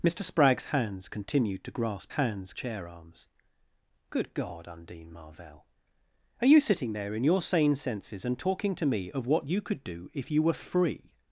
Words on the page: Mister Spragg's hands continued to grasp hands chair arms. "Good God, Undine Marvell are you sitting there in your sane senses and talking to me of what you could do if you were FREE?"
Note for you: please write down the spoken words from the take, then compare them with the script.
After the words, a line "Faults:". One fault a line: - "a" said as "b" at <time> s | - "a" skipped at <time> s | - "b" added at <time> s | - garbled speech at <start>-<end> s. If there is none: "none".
Mister Spragg's hands continued to grasp hands chair arms. "Good God, Undine Marvell are you sitting there in your sane senses and talking to me of what you could do if you were FREE?"
Faults:
none